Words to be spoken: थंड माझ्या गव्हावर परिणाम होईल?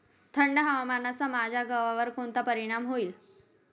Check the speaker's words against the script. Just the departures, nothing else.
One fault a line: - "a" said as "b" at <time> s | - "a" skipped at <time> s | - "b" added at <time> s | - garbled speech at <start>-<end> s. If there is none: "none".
- "हवामानाचा" added at 0.6 s
- "कोणता" added at 2.1 s